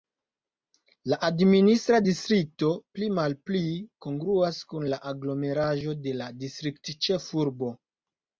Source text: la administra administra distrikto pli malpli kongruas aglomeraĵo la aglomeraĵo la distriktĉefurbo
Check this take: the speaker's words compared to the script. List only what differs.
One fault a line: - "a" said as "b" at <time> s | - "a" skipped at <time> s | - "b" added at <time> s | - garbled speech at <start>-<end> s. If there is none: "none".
- "administra" skipped at 2.0 s
- "aglomeraĵo" said as "kun" at 4.7 s
- "de" added at 6.0 s